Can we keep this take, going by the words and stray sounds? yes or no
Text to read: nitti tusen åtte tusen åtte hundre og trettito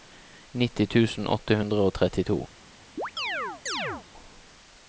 no